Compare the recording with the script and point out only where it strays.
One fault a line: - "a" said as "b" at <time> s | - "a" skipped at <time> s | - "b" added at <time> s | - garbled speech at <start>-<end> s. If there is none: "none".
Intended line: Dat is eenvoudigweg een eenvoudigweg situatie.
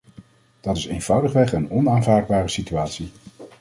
- "eenvoudigweg" said as "onaanvaardbare" at 1.7 s